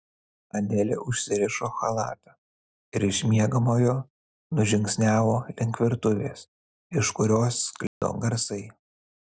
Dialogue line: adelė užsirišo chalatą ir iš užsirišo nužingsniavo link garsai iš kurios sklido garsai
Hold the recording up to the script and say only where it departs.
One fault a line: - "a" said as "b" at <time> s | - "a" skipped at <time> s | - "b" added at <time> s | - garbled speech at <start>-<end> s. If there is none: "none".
- "užsirišo" said as "miegamojo" at 3.3 s
- "garsai" said as "virtuvės" at 5.9 s